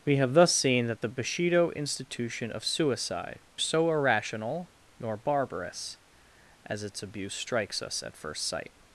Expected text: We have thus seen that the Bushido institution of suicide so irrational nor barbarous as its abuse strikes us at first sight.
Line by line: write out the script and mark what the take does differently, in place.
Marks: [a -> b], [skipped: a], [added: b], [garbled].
We have thus seen that the Bushido institution of suicide so irrational nor barbarous as its abuse strikes us at first sight.